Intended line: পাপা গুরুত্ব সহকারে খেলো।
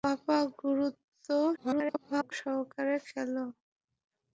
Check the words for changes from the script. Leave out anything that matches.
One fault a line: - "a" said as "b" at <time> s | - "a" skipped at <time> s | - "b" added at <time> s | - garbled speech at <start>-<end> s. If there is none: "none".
- garbled speech at 1.6-2.3 s